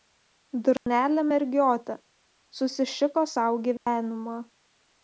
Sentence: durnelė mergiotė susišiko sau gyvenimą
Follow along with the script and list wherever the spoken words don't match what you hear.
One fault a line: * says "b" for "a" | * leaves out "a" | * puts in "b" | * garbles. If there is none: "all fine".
all fine